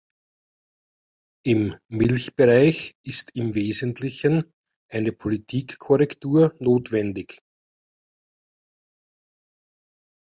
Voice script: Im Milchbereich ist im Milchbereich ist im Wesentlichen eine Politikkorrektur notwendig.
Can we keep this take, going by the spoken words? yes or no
no